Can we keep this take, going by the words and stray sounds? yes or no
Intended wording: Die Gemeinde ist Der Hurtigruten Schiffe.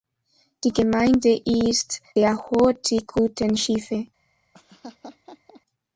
no